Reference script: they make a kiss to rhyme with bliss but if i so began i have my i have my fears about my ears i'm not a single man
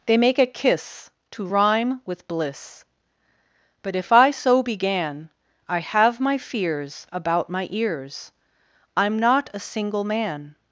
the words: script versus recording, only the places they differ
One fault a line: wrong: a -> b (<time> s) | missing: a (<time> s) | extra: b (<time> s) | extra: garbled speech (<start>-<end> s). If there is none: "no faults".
missing: i have my (6.4 s)